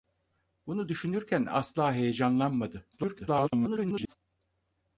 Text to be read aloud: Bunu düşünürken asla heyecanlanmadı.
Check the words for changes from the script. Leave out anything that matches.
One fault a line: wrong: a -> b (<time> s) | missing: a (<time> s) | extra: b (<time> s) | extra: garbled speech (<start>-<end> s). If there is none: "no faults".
extra: garbled speech (2.9-4.2 s)